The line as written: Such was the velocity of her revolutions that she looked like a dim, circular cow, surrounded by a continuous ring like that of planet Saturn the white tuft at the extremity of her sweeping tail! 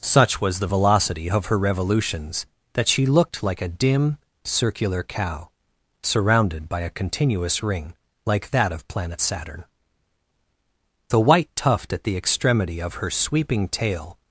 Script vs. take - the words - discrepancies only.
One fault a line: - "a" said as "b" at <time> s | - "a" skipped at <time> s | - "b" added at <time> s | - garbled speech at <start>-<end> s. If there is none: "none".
none